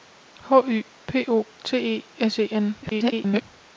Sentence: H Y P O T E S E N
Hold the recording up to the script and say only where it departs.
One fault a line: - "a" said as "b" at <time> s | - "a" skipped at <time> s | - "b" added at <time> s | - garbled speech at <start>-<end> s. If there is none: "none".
- garbled speech at 2.8-3.4 s